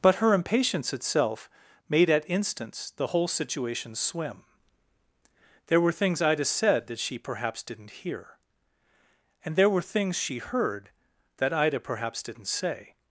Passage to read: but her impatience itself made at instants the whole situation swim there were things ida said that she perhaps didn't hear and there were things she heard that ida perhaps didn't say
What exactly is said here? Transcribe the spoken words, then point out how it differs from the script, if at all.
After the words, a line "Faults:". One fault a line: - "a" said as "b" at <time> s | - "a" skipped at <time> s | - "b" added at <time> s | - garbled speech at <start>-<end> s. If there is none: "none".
but her impatience itself made at instants the whole situation swim there were things ida said that she perhaps didn't hear and there were things she heard that ida perhaps didn't say
Faults:
none